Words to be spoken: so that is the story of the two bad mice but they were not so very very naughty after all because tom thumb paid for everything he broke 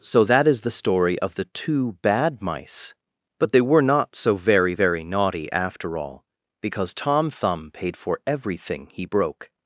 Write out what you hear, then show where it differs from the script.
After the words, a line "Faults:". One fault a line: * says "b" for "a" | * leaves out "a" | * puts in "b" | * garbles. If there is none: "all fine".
so that is the story of the two bad mice but they were not so very very naughty after all because tom thumb paid for everything he broke
Faults:
all fine